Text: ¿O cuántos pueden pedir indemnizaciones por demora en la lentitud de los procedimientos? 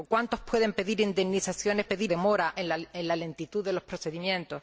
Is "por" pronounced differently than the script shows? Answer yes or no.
yes